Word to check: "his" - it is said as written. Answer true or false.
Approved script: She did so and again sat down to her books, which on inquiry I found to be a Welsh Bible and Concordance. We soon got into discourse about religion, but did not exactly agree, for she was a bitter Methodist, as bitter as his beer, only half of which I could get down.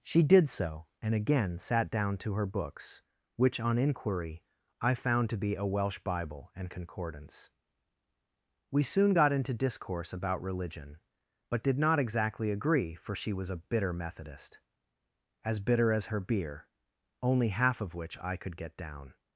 false